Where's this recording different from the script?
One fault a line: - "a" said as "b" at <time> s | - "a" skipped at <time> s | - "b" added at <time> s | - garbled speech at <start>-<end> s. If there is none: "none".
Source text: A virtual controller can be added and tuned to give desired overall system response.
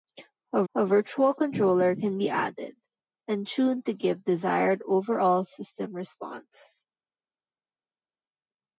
- "a" added at 0.7 s